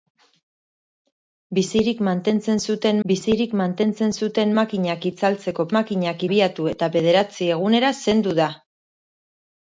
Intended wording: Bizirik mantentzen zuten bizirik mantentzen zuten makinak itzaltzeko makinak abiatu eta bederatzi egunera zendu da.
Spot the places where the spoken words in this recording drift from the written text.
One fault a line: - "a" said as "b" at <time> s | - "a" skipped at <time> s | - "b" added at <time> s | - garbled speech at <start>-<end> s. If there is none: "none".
none